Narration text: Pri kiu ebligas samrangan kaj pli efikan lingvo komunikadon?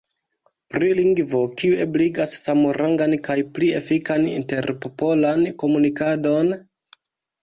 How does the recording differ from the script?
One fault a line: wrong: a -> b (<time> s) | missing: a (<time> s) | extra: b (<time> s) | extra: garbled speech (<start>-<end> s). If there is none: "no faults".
extra: lingvo (1.0 s)
wrong: lingvo -> interpopolan (4.3 s)